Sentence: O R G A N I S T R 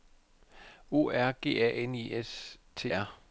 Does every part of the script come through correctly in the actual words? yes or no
yes